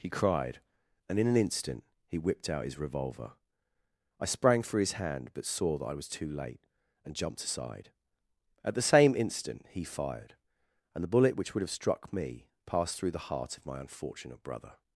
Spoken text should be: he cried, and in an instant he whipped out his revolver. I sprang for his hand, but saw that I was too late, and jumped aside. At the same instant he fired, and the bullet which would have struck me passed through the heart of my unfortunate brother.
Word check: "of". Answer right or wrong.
right